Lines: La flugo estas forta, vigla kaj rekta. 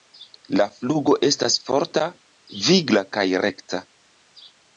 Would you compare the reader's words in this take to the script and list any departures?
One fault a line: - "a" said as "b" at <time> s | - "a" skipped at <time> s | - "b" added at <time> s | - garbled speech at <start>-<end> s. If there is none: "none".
none